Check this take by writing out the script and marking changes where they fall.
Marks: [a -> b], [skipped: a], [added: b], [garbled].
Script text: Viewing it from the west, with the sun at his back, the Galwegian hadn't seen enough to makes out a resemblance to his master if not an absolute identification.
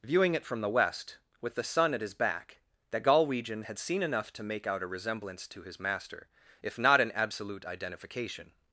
Viewing it from the west, with the sun at his back, the Galwegian [hadn't -> had] seen enough to [makes -> make] out a resemblance to his master if not an absolute identification.